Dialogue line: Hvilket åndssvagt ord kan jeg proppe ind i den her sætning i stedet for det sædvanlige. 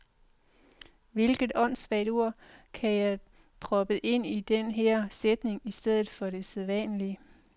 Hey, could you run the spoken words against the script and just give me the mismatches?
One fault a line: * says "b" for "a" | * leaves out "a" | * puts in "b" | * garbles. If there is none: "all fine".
all fine